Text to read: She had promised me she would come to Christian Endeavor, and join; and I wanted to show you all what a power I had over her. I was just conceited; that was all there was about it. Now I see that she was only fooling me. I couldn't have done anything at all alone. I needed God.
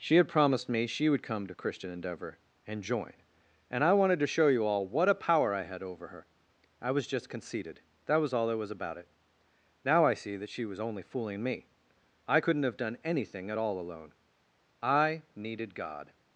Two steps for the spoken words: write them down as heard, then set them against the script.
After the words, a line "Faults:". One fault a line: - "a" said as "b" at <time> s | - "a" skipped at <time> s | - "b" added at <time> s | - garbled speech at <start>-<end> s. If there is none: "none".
She had promised me she would come to Christian Endeavor, and join; and I wanted to show you all what a power I had over her. I was just conceited; that was all there was about it. Now I see that she was only fooling me. I couldn't have done anything at all alone. I needed God.
Faults:
none